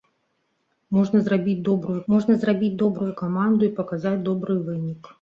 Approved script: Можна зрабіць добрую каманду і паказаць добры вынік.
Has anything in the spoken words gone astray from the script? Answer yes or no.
yes